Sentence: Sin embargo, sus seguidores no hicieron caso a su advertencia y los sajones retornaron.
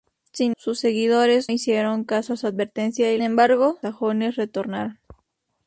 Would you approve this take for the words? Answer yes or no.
no